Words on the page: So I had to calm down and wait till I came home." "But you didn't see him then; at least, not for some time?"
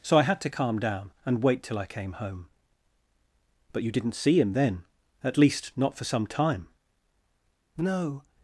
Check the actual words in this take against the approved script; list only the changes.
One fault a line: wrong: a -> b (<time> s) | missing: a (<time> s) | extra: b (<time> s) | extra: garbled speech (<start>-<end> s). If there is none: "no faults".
extra: No (7.8 s)